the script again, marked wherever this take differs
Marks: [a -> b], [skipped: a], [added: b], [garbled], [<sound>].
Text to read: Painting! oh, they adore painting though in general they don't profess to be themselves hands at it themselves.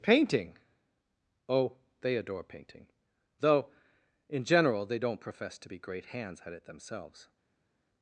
Painting! oh, they adore painting though in general they don't profess to be [themselves -> great] hands at it themselves.